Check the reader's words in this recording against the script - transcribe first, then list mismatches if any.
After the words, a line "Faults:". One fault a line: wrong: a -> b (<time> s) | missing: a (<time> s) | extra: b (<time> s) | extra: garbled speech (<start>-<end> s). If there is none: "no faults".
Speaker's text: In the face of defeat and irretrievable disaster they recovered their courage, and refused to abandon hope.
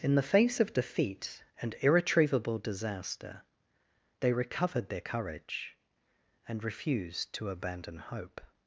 In the face of defeat and irretrievable disaster they recovered their courage, and refused to abandon hope.
Faults:
no faults